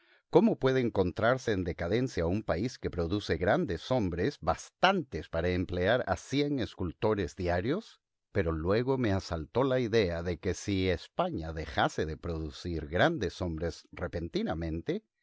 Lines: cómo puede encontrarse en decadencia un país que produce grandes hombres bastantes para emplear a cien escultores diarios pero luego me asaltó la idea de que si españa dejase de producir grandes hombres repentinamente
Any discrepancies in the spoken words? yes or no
no